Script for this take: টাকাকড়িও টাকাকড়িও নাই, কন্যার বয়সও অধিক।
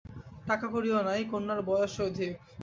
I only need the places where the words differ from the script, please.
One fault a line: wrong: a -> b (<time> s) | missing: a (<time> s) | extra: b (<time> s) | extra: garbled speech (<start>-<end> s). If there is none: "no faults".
missing: টাকাকড়িও (1.0 s)